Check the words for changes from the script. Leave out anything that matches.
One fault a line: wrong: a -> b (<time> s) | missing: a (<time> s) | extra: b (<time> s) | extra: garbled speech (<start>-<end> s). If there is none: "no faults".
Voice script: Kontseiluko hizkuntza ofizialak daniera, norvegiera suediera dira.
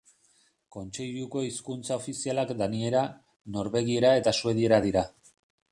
extra: eta (4.2 s)